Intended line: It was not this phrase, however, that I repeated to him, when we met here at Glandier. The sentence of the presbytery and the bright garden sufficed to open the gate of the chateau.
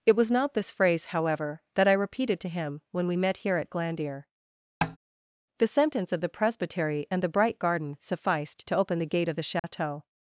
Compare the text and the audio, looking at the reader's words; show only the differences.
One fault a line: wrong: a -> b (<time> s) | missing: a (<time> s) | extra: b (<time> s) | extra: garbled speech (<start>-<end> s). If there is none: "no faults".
no faults